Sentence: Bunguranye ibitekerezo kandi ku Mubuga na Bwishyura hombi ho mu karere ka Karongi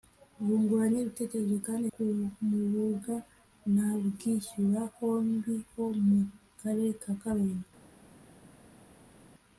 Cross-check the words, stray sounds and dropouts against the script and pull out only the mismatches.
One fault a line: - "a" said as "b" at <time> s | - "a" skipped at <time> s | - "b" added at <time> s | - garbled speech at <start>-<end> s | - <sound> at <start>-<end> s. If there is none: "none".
none